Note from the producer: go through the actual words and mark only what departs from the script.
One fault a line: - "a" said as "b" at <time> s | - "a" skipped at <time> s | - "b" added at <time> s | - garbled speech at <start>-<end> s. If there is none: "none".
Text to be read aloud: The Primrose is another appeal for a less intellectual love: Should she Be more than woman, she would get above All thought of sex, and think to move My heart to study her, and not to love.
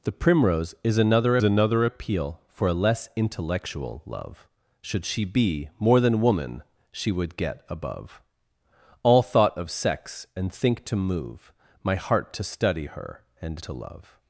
- "another" added at 1.4 s
- "not" skipped at 13.6 s